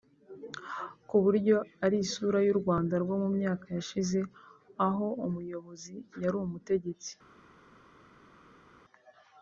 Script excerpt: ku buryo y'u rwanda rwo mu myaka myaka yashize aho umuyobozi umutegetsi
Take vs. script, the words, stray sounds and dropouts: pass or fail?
fail